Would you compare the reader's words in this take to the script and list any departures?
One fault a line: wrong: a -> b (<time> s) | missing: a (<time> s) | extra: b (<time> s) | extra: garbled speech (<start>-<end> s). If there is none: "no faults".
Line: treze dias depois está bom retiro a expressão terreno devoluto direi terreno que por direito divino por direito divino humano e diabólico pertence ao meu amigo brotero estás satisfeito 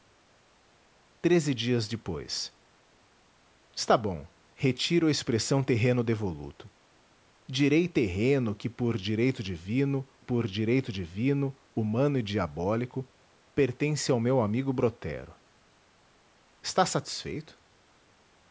no faults